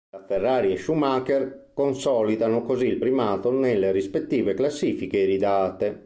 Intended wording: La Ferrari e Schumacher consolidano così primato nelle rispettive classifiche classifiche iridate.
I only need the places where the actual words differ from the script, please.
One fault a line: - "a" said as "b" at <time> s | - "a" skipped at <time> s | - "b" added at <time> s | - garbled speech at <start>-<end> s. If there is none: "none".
- "il" added at 2.9 s
- "classifiche" skipped at 5.2 s